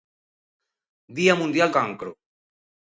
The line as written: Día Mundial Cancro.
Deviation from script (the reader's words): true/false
false